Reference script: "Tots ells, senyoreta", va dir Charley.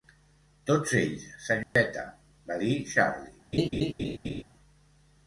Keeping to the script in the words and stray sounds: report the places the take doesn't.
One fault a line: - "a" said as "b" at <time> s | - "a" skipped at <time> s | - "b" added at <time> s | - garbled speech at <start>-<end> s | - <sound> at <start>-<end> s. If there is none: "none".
- dropout at 1.6-1.8 s
- laugh at 3.5-4.4 s